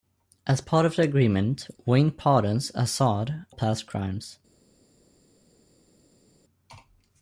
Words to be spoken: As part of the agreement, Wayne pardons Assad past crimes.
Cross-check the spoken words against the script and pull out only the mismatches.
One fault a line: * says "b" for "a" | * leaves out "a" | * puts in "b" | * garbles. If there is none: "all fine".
all fine